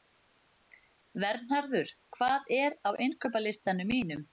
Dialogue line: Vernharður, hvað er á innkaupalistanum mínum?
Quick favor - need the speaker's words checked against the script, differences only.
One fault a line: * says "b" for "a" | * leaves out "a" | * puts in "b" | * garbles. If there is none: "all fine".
all fine